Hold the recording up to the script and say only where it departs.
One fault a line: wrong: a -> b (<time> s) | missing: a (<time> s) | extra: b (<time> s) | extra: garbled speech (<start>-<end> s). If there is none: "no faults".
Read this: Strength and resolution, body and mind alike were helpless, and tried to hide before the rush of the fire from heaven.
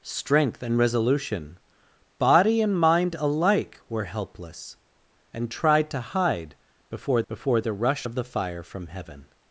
extra: before (7.3 s)